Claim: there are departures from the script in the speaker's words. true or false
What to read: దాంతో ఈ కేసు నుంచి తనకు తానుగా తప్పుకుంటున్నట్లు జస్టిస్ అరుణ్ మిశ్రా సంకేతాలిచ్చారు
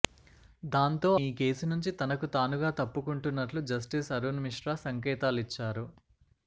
false